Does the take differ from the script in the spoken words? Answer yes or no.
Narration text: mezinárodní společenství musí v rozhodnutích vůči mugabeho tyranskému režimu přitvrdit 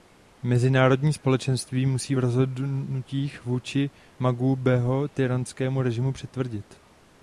no